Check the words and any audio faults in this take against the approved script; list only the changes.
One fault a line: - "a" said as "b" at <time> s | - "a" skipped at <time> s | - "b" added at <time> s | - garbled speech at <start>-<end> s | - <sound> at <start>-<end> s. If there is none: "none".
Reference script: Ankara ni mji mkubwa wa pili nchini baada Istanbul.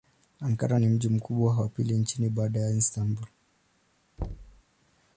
- "ya" added at 2.6 s
- thud at 4.2-4.6 s